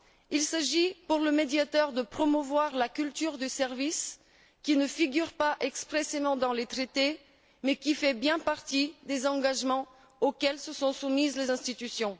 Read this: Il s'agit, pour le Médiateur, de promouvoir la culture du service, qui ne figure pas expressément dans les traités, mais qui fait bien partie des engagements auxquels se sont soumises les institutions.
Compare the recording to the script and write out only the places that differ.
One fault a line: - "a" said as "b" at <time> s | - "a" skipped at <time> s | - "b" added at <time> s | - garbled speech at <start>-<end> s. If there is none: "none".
none